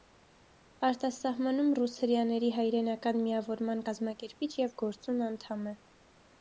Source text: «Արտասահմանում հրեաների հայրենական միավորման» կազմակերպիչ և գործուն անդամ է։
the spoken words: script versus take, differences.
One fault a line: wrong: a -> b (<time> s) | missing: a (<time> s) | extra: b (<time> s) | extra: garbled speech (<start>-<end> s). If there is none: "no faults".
extra: ռուս (1.8 s)